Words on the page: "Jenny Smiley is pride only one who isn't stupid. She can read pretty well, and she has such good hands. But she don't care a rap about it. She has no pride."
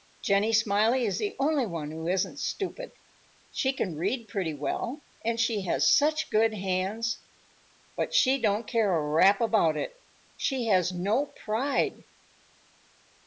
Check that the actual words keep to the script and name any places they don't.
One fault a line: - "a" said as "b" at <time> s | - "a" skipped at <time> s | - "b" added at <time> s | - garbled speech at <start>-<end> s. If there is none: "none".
- "pride" said as "the" at 1.2 s